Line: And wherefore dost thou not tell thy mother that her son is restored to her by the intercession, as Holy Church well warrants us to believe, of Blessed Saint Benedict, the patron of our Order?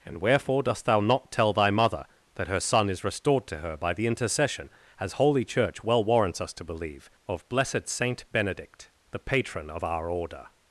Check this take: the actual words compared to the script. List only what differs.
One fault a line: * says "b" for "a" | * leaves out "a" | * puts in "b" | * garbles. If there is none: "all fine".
all fine